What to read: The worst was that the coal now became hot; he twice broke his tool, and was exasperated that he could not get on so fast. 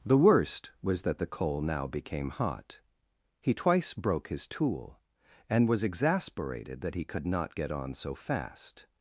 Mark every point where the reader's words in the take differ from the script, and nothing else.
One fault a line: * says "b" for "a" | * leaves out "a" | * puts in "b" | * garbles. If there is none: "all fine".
all fine